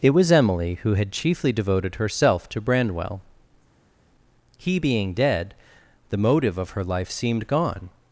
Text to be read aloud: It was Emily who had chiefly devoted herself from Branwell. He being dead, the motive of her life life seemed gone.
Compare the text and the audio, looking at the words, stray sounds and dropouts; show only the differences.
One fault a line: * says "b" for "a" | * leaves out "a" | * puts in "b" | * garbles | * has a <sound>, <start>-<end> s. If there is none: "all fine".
* says "to" for "from"
* leaves out "life"